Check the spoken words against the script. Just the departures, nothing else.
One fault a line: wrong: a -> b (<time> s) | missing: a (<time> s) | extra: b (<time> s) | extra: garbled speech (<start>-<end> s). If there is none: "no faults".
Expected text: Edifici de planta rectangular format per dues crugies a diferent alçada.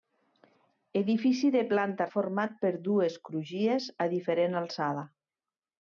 missing: rectangular (2.1 s)